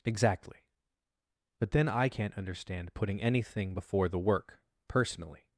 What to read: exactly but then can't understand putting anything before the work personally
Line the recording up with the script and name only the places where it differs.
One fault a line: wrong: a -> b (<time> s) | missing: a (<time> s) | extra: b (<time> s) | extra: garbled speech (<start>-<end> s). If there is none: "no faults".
extra: i (1.9 s)